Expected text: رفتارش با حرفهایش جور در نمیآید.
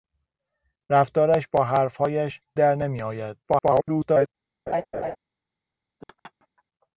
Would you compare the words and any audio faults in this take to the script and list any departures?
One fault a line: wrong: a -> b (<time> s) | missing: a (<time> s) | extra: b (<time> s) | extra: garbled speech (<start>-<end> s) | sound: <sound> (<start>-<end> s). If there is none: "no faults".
missing: جور (2.4 s)
extra: garbled speech (3.4-4.3 s)
sound: laugh (4.7-5.2 s)
sound: laugh (6.0-6.6 s)